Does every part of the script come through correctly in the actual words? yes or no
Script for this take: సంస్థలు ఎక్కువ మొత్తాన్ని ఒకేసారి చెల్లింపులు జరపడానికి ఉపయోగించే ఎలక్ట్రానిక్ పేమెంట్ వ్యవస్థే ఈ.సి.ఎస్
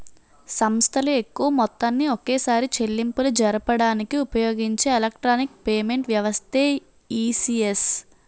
yes